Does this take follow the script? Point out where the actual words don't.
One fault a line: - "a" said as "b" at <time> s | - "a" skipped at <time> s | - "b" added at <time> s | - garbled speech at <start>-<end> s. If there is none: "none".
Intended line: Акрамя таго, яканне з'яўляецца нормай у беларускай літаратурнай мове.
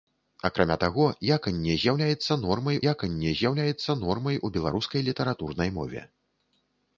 - "яканне з'яўляецца нормай" added at 2.9 s